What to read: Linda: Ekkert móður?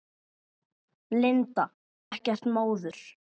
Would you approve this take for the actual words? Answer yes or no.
yes